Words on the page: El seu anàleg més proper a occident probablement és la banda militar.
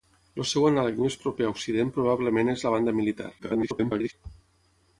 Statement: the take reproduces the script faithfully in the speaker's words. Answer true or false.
false